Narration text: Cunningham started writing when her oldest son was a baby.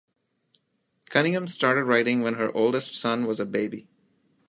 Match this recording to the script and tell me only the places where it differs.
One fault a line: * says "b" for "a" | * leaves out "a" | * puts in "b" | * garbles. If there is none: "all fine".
all fine